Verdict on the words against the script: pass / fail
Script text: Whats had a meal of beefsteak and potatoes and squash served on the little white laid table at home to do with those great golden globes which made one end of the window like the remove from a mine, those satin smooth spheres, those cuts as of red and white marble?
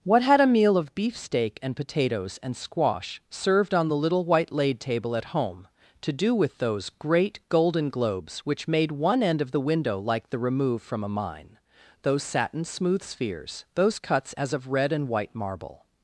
fail